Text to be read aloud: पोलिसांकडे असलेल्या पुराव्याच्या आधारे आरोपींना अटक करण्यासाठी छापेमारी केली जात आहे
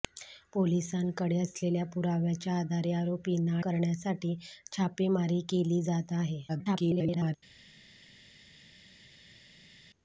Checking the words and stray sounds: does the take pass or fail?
fail